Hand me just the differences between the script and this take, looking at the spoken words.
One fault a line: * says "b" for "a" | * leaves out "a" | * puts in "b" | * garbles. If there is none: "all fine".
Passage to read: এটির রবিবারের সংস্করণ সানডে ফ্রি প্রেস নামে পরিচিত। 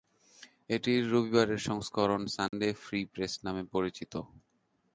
all fine